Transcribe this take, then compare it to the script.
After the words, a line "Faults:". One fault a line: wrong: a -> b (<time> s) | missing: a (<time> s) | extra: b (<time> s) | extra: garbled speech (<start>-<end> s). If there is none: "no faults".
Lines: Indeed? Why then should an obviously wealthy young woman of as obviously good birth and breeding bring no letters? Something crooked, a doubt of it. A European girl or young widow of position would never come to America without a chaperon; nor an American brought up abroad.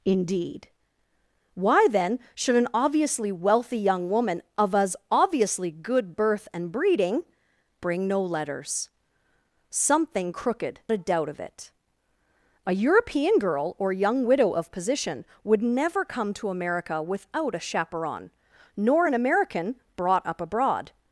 Indeed? Why then should an obviously wealthy young woman of as obviously good birth and breeding bring no letters? Something crooked, a doubt of it. A European girl or young widow of position would never come to America without a chaperon; nor an American brought up abroad.
Faults:
no faults